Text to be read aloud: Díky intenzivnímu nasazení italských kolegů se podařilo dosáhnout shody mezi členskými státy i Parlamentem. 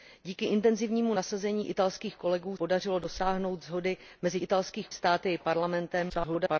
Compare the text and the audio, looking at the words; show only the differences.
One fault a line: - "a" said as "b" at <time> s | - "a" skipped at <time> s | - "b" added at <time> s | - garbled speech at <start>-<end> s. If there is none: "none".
- "se" skipped at 2.6 s
- "členskými" said as "italských" at 4.4 s
- garbled speech at 6.1-6.6 s